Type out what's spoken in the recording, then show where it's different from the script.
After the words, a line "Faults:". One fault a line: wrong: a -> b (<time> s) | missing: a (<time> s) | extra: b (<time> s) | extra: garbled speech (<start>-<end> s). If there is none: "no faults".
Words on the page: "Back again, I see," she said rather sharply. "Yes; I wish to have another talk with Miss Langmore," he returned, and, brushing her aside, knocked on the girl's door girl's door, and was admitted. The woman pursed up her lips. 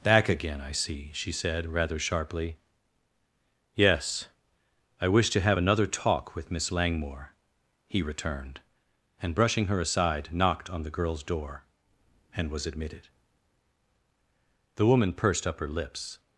"Back again, I see," she said rather sharply. "Yes; I wish to have another talk with Miss Langmore," he returned, and, brushing her aside, knocked on the girl's door, and was admitted. The woman pursed up her lips.
Faults:
missing: girl's door (11.6 s)